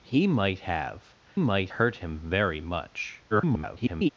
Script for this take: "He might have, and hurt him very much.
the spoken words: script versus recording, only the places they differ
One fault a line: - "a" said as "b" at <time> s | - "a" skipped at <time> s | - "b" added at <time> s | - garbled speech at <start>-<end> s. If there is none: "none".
- "and" said as "might" at 1.4 s
- garbled speech at 3.3-4.1 s